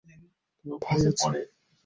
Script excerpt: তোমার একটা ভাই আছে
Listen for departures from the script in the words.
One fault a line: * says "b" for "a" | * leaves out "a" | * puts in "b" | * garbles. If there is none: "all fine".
* leaves out "একটা"